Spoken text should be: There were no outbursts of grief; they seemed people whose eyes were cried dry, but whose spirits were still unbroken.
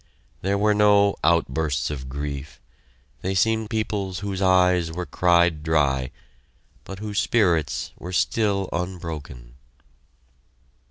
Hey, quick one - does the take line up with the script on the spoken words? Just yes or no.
yes